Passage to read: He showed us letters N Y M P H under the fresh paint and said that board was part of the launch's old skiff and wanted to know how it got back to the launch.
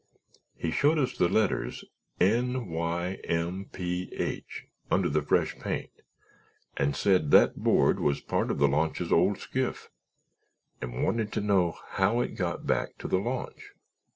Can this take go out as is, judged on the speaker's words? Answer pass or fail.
fail